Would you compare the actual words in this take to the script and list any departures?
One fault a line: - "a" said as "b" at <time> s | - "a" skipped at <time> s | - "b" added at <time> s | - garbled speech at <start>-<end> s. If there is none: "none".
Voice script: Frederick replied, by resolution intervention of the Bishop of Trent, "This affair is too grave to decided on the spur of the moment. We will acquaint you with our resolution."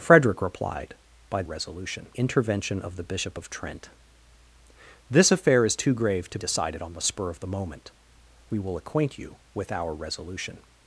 none